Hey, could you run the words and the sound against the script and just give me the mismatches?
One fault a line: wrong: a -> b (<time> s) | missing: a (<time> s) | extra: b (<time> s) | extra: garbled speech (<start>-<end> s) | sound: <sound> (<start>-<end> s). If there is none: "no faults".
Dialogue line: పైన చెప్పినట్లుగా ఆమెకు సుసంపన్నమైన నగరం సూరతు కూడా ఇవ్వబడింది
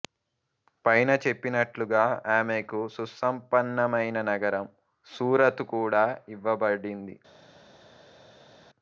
no faults